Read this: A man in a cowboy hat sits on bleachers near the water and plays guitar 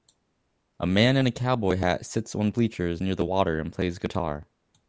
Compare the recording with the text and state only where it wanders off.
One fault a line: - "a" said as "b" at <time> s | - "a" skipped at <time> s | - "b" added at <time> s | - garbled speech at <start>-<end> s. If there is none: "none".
none